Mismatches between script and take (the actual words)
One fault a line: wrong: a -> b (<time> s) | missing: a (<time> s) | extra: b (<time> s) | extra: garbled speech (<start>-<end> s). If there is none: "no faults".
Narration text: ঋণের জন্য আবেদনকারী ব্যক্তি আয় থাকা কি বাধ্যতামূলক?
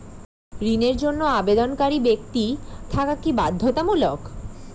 missing: আয় (2.5 s)